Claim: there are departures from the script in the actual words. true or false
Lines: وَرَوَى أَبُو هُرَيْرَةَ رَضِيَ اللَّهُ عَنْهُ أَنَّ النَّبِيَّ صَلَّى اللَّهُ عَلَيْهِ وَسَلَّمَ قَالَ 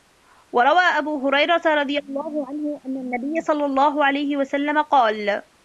false